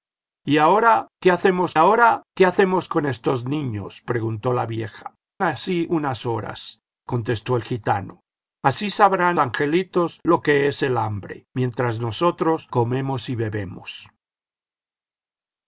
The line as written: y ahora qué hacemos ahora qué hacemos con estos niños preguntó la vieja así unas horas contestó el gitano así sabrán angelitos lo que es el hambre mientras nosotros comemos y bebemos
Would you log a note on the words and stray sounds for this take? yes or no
no